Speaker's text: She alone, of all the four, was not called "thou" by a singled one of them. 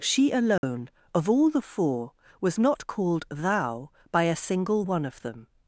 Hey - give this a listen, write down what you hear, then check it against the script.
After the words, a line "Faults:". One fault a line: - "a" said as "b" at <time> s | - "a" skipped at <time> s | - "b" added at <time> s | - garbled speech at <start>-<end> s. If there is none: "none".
She alone, of all the four, was not called "thou" by a single one of them.
Faults:
- "singled" said as "single" at 4.3 s